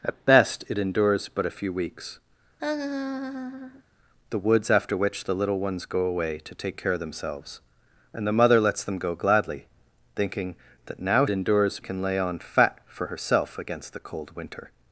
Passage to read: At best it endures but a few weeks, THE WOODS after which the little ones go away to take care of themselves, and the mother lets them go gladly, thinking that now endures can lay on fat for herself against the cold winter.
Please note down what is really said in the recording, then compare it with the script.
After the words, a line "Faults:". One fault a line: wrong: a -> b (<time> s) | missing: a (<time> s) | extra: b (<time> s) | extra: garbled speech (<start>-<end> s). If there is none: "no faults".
At best it endures but a few weeks, THE WOODS after which the little ones go away to take care of themselves, and the mother lets them go gladly, thinking that now endures can lay on fat for herself against the cold winter.
Faults:
no faults